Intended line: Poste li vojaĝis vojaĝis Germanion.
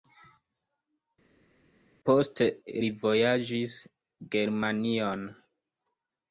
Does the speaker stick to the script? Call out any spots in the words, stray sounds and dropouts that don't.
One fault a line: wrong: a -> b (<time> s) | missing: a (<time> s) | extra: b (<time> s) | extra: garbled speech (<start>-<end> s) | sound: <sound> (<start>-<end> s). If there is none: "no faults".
missing: vojaĝis (3.8 s)